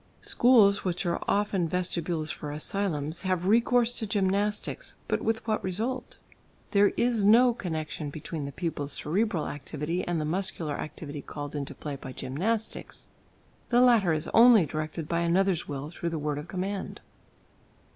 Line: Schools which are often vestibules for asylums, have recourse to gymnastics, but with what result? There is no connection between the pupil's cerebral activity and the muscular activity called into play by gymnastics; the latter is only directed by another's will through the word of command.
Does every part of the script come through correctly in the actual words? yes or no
yes